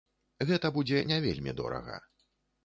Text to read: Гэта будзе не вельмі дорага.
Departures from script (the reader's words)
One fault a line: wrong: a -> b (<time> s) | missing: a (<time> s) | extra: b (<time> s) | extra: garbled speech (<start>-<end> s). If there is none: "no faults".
no faults